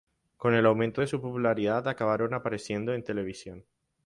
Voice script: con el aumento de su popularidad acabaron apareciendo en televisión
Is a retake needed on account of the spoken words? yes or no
no